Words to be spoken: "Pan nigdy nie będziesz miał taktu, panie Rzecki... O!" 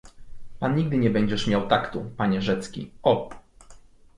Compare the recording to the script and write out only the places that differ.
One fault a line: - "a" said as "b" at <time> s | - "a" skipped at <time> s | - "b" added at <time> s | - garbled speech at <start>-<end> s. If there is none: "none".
none